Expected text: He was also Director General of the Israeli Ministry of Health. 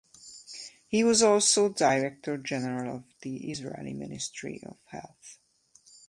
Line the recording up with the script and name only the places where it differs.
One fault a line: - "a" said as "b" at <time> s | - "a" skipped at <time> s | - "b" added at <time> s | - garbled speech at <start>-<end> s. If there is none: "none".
none